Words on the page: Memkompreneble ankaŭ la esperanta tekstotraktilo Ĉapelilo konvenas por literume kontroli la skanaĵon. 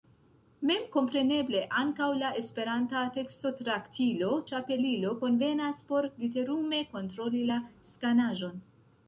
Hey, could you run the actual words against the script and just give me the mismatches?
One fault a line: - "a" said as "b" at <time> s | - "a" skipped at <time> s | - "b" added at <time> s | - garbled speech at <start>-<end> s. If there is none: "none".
none